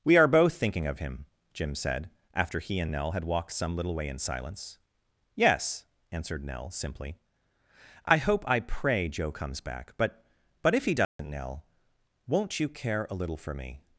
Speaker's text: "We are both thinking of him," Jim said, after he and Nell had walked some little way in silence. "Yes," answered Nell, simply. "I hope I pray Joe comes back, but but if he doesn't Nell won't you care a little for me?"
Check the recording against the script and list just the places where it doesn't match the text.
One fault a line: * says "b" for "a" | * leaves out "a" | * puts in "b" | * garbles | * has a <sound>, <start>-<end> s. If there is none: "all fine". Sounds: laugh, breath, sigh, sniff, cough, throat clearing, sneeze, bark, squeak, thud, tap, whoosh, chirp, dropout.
* has a dropout, 11.0-11.2 s